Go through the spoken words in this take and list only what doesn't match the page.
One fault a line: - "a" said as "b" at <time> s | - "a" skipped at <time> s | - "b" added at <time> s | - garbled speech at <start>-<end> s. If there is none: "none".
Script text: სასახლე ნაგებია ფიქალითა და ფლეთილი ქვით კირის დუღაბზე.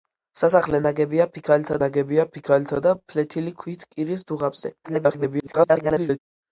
- "ნაგებია ფიქალითა" added at 1.8 s
- garbled speech at 4.8-6.2 s